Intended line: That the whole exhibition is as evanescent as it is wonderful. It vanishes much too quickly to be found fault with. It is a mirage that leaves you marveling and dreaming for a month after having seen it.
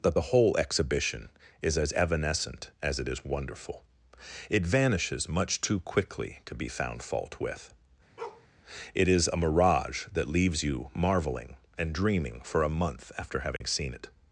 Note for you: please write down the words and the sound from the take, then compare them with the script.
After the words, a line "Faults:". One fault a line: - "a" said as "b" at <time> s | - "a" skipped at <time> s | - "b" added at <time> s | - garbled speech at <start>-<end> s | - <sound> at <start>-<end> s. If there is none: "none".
That the whole exhibition is as evanescent as it is wonderful. It vanishes much too quickly to be found fault with. It is a mirage that leaves you marveling and dreaming for a month after having seen it.
Faults:
- bark at 8.2-8.5 s
- dropout at 13.6-13.6 s